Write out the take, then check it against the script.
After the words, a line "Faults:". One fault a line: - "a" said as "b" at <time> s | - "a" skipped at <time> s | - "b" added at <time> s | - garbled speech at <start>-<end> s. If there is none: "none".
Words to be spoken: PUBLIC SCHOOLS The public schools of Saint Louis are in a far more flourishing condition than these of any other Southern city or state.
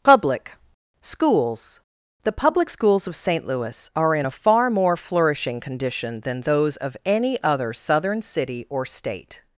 PUBLIC SCHOOLS The public schools of Saint Louis are in a far more flourishing condition than those of any other Southern city or state.
Faults:
- "these" said as "those" at 6.4 s